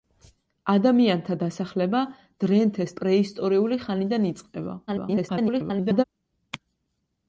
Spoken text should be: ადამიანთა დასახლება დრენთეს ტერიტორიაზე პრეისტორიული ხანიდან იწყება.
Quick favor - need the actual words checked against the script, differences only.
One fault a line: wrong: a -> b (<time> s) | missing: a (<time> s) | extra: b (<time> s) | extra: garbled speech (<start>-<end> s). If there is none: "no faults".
missing: ტერიტორიაზე (3.0 s)
extra: garbled speech (4.9-6.0 s)